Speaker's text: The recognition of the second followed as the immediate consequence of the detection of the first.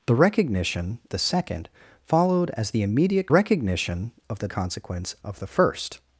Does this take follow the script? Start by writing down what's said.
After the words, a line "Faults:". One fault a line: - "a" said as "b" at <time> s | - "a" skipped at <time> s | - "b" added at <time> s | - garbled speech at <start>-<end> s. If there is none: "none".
The recognition the second followed as the immediate recognition of the consequence of the first.
Faults:
- "of" skipped at 1.0 s
- "consequence" said as "recognition" at 3.3 s
- "detection" said as "consequence" at 4.5 s